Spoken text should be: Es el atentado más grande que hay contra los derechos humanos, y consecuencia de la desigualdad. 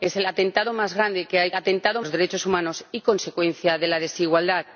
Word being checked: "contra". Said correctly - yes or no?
no